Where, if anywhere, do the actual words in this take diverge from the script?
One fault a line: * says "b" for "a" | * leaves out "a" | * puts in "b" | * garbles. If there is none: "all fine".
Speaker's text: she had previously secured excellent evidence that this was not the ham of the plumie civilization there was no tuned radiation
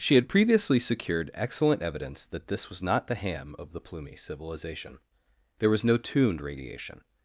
all fine